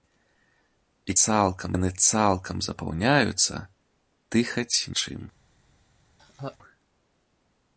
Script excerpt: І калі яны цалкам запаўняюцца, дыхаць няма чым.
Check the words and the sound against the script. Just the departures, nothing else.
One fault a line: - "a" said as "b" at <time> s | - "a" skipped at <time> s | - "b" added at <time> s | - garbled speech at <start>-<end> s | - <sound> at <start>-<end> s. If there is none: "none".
- "калі" said as "цалкам" at 1.2 s
- "няма" skipped at 4.8 s
- laugh at 6.2-6.6 s